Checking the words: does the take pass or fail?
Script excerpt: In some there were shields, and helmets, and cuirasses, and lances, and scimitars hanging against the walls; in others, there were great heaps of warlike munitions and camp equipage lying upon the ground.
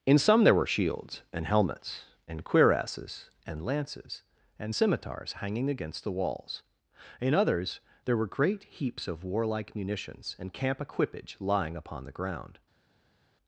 pass